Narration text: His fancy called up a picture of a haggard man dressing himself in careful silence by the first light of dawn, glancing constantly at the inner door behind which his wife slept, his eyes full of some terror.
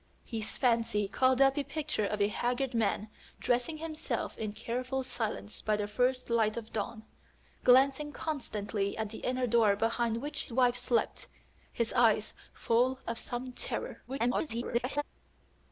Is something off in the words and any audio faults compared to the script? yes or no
yes